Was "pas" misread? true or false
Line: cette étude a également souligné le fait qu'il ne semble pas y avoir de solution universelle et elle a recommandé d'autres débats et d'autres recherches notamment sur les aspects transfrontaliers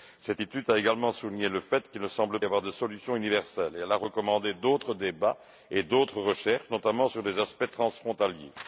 true